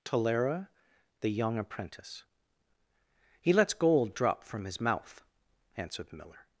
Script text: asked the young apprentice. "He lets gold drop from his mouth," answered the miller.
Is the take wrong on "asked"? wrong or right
wrong